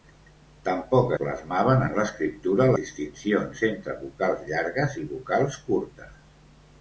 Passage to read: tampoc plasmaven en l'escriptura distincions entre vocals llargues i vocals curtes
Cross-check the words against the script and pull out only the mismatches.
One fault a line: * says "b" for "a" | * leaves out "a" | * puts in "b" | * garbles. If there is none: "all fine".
all fine